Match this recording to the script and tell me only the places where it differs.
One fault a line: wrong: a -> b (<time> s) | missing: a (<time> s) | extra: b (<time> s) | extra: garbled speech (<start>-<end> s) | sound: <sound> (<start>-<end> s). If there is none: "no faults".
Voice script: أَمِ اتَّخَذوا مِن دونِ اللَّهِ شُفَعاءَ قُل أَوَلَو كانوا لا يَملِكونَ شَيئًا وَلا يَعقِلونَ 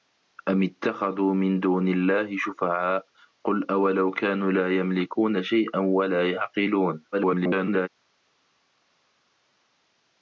extra: garbled speech (7.1-7.9 s)